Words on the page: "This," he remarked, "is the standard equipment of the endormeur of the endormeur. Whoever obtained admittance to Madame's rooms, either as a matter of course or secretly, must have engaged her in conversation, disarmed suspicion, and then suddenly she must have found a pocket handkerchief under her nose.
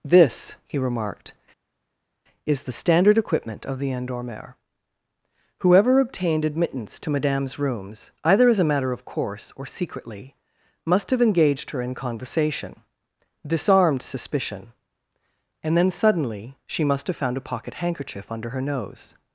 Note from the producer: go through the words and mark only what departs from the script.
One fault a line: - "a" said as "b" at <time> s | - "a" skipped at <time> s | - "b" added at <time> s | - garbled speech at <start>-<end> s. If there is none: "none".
- "of the endormeur" skipped at 4.5 s